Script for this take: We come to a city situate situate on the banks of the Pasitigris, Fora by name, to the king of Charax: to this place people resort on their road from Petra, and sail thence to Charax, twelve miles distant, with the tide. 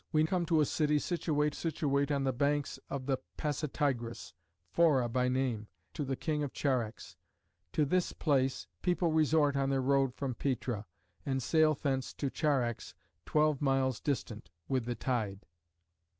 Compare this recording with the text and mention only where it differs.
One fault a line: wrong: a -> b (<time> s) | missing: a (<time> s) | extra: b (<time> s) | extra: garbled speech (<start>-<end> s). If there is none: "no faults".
no faults